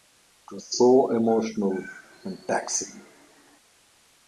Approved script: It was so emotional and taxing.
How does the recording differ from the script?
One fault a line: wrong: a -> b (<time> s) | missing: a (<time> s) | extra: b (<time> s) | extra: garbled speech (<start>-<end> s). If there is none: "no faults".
no faults